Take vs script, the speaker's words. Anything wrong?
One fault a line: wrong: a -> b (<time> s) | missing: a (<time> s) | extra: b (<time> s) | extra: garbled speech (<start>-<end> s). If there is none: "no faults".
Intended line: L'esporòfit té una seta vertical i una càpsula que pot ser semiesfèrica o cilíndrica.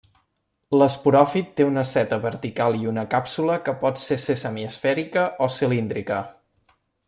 extra: ser (4.2 s)